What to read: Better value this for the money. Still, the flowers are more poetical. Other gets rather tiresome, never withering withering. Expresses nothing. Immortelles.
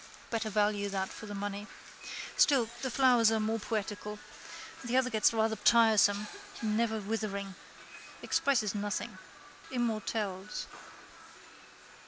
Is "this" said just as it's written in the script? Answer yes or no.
no